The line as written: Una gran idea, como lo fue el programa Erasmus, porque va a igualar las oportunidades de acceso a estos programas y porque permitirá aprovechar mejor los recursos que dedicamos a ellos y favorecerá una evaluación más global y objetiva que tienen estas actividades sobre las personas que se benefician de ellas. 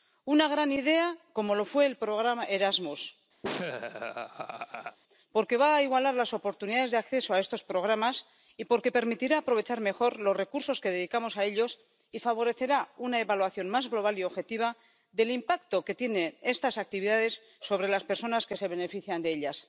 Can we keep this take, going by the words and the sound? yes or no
no